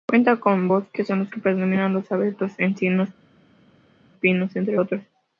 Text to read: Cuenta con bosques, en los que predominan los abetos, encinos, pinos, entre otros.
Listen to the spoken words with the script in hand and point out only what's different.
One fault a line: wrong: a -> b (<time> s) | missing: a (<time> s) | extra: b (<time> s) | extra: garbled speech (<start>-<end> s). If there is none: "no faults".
no faults